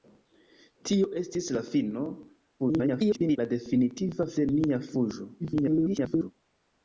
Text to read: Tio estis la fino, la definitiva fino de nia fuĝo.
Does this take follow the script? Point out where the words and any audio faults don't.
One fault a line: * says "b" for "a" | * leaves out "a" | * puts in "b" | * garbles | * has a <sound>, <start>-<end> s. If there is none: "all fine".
* garbles
* leaves out "fino"
* garbles